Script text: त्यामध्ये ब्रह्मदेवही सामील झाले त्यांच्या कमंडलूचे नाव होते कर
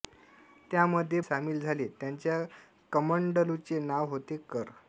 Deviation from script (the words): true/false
true